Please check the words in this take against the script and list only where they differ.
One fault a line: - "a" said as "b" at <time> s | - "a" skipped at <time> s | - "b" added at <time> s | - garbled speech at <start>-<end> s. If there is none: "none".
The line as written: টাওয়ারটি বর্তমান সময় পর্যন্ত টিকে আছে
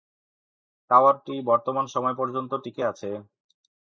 none